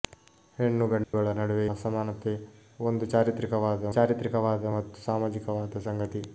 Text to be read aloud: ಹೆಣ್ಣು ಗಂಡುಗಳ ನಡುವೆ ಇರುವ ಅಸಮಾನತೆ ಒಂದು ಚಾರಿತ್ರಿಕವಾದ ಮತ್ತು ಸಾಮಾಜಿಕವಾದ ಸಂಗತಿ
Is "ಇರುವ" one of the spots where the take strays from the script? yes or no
yes